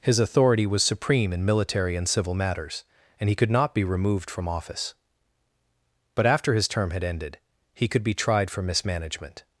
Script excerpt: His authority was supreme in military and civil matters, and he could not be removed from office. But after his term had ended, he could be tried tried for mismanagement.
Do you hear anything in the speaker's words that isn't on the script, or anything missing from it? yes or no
yes